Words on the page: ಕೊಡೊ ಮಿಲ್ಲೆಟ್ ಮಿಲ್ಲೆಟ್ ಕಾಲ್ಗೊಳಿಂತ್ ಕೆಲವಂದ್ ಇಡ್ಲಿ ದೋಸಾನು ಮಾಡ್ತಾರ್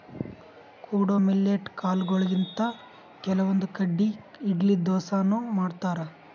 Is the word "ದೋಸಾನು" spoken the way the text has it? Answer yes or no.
yes